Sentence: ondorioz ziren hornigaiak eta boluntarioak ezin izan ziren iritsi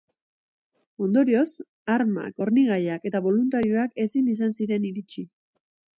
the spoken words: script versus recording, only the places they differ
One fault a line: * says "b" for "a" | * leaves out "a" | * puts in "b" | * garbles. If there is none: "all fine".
* says "armak" for "ziren"